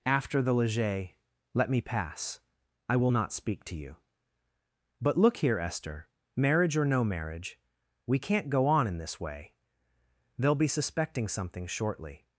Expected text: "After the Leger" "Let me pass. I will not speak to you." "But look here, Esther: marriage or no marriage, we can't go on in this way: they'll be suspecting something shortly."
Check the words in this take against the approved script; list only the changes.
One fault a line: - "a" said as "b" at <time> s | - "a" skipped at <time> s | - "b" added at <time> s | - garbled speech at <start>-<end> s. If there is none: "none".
none